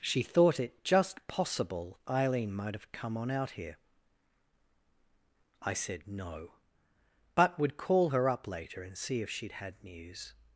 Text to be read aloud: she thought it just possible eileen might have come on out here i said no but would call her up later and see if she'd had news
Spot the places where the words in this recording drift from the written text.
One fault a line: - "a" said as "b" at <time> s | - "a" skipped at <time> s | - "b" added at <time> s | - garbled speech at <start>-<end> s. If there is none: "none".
none